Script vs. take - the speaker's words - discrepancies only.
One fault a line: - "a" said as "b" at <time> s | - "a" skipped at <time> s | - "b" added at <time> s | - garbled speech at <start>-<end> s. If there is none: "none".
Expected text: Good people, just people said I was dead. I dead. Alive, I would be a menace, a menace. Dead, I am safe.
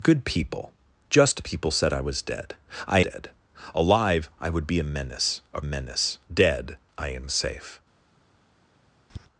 none